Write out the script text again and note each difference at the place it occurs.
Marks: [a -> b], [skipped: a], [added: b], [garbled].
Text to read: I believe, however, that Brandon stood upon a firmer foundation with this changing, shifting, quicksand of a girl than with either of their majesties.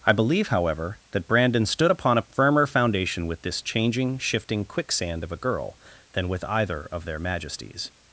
I believe, however, that Brandon stood upon a firmer foundation with this changing, shifting, quicksand of a girl than with either of their majesties.